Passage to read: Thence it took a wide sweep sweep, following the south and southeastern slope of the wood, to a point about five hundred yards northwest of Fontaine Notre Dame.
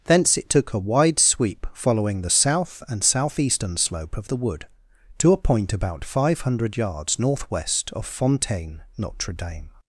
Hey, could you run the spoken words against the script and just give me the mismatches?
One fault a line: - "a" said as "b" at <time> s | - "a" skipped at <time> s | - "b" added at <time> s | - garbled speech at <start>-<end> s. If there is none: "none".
- "sweep" skipped at 1.7 s